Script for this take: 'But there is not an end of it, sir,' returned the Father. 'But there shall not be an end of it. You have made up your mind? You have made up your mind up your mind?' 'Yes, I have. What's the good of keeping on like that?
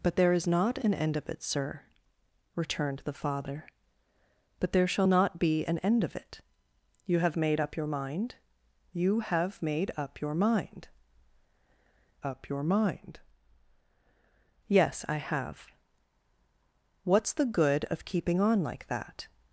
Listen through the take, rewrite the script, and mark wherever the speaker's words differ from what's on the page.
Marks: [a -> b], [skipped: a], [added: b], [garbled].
'But there is not an end of it, sir,' returned the Father. 'But there shall not be an end of it. You have made up your mind? You have made up your mind up your mind?' 'Yes, I have. What's the good of keeping on like that?